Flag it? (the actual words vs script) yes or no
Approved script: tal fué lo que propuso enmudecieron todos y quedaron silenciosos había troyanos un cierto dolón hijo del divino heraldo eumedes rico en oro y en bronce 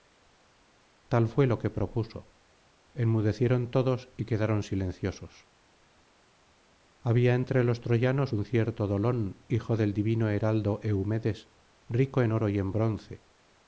yes